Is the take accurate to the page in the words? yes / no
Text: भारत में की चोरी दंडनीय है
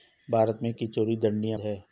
yes